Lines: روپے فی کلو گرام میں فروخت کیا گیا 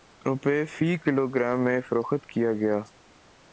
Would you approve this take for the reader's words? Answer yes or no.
yes